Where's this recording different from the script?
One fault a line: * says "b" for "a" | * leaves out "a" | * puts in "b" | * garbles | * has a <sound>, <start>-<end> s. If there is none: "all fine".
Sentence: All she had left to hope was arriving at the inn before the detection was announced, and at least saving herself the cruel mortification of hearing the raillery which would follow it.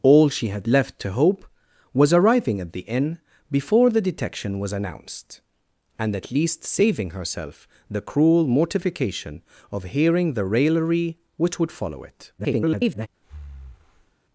* garbles
* has a breath, 13.2-14.2 s